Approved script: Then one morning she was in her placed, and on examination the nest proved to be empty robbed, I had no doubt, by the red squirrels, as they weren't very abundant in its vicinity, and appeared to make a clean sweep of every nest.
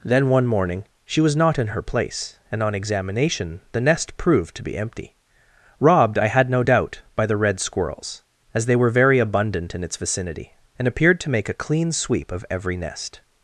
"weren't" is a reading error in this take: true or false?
true